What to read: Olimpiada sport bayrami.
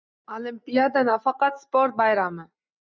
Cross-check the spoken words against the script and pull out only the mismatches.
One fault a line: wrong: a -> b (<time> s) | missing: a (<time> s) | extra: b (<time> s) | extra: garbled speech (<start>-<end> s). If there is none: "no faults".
extra: nafaqat (1.1 s)